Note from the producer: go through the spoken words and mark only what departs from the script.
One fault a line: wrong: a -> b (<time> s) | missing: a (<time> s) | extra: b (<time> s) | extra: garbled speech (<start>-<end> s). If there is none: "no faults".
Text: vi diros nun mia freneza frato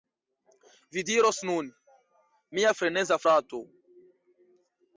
no faults